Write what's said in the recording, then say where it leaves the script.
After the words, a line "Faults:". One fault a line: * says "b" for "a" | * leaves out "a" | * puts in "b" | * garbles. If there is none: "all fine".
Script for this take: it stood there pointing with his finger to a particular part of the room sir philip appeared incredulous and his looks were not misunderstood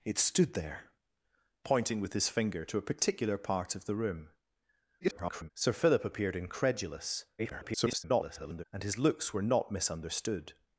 it stood there pointing with his finger to a particular part of the room [garbled] sir philip appeared incredulous [garbled] and his looks were not misunderstood
Faults:
* garbles
* garbles